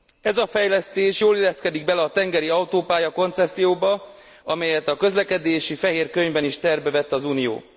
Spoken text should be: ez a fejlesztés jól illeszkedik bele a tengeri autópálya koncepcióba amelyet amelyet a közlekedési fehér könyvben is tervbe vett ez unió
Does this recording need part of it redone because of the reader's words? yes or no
yes